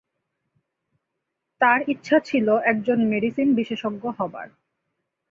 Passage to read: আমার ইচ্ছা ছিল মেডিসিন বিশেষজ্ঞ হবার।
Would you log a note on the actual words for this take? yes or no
yes